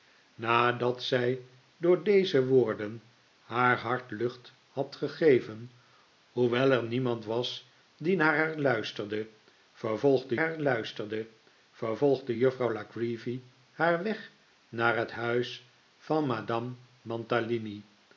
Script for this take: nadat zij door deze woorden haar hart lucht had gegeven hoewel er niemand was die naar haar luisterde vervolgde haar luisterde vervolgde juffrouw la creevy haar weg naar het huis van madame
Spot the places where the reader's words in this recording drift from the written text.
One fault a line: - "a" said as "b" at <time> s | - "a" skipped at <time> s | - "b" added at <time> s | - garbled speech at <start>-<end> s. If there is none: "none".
none